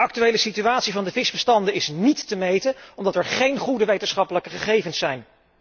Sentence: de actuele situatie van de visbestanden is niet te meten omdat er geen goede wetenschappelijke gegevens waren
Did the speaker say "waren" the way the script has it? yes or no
no